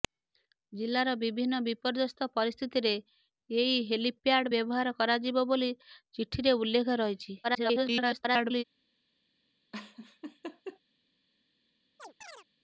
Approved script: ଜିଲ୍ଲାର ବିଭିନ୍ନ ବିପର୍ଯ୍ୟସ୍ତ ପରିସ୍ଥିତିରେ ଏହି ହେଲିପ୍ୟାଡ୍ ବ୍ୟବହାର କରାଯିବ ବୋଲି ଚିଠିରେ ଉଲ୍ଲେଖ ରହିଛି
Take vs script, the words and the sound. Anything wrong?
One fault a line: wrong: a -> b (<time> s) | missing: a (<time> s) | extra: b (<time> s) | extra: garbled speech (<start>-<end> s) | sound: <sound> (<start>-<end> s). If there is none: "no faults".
extra: garbled speech (7.4-8.6 s)
sound: laugh (9.7-10.8 s)
sound: chirp (12.0-12.5 s)